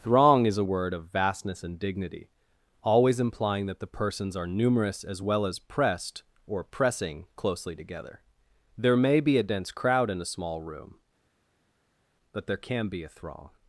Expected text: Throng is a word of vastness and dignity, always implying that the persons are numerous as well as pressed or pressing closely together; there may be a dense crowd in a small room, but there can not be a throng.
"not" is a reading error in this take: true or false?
true